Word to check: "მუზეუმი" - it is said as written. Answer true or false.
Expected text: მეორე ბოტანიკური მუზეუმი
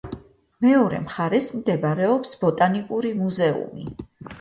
true